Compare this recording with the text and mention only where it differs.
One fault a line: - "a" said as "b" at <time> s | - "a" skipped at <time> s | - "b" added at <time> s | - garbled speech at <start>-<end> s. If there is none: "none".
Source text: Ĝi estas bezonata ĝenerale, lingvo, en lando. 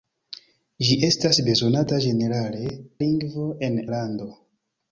none